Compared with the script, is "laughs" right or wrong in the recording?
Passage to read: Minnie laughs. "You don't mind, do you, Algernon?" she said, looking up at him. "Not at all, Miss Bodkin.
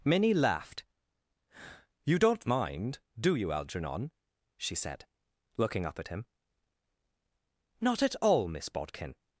wrong